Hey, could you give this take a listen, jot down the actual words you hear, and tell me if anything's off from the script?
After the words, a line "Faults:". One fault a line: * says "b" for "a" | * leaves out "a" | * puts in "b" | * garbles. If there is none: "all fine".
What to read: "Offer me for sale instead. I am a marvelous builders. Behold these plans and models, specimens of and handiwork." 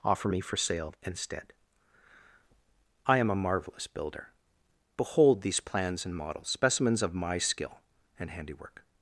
"Offer me for sale instead. I am a marvelous builder. Behold these plans and models, specimens of my skill and handiwork."
Faults:
* says "builder" for "builders"
* puts in "my skill"